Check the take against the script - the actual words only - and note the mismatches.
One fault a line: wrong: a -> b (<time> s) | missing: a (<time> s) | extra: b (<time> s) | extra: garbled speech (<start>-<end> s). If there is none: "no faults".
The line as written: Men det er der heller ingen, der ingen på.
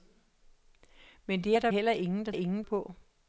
no faults